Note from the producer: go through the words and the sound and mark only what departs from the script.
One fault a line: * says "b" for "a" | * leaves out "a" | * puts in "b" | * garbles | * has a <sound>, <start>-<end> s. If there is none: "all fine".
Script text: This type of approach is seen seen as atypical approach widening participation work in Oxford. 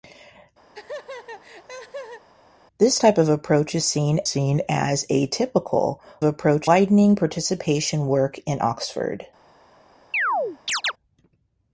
* has a laugh, 0.7-2.3 s
* has a chirp, 10.1-10.9 s